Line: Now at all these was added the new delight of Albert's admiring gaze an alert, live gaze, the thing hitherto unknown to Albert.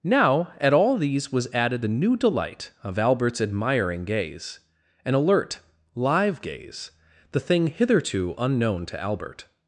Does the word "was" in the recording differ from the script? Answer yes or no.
no